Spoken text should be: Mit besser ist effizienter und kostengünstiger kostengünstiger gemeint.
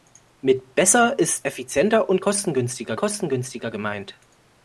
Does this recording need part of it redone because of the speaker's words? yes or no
no